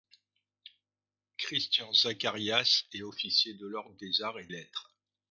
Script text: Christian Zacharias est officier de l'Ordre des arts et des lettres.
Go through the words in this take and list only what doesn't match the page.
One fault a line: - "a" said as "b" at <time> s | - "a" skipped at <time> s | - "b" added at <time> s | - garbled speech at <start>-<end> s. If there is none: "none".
- "des" skipped at 4.5 s